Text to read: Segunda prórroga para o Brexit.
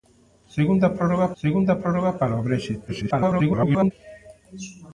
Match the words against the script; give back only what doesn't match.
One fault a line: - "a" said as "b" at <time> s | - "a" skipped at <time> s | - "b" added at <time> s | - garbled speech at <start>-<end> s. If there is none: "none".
- "segunda prórroga" added at 1.4 s
- garbled speech at 2.9-3.9 s